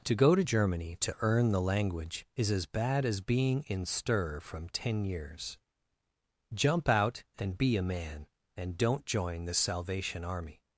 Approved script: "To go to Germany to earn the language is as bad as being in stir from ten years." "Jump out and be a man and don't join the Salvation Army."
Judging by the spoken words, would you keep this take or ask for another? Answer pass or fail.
pass